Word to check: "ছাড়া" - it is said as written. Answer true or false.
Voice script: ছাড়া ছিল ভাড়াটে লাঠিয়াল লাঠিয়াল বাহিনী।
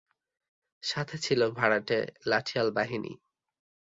false